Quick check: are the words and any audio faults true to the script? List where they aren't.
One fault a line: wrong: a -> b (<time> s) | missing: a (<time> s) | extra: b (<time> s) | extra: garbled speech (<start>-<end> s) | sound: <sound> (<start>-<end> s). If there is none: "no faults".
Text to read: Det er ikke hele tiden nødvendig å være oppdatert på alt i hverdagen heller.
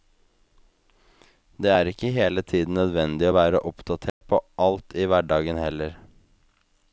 sound: dropout (4.1-4.2 s)